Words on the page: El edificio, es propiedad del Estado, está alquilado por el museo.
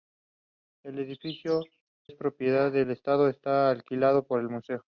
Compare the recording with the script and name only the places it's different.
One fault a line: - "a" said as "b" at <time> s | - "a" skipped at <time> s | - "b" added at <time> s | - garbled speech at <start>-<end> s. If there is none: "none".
none